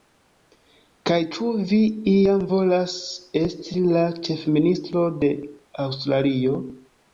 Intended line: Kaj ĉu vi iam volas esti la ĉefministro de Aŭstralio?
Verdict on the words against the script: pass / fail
pass